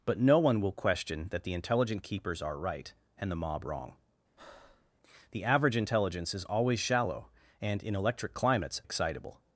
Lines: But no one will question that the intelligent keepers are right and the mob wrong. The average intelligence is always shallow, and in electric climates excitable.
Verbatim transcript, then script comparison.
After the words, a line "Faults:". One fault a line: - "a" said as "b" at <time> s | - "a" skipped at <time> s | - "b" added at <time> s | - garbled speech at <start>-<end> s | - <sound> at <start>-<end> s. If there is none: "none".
But no one will question that the intelligent keepers are right and the mob wrong. The average intelligence is always shallow, and in electric climates excitable.
Faults:
- breath at 4.4-4.9 s